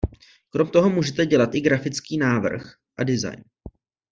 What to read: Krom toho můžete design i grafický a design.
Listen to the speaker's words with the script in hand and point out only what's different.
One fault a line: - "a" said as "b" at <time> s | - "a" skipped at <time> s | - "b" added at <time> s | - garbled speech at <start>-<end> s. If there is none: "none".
- "design" said as "dělat" at 1.2 s
- "návrh" added at 2.2 s